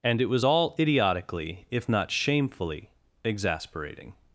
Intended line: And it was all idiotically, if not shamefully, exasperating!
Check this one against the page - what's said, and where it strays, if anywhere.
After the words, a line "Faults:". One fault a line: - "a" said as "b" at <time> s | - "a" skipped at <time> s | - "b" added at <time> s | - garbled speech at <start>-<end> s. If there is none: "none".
And it was all idiotically, if not shamefully, exasperating!
Faults:
none